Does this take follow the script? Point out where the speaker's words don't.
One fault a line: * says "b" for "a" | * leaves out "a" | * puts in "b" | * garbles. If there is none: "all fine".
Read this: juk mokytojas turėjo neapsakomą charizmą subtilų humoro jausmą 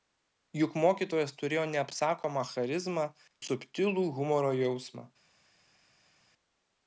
all fine